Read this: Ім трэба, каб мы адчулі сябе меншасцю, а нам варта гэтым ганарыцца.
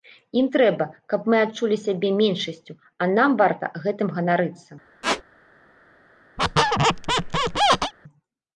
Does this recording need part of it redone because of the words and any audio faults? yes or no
yes